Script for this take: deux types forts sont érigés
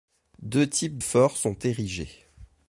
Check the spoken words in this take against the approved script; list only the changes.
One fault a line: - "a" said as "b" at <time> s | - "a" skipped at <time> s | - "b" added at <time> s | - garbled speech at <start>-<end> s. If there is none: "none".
none